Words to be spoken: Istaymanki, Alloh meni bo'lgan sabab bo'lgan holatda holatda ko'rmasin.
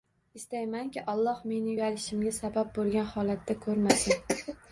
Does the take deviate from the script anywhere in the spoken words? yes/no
yes